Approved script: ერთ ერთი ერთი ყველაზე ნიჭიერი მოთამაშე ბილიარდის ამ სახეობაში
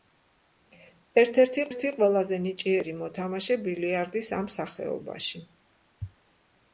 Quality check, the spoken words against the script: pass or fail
pass